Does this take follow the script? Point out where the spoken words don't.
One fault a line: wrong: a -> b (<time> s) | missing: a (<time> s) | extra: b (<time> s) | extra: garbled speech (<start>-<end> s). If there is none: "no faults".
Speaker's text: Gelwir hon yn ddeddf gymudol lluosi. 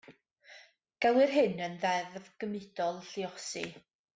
wrong: hon -> hyn (1.4 s)